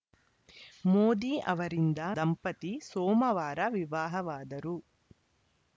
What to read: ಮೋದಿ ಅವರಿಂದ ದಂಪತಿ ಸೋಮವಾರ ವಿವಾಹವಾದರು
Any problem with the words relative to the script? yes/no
no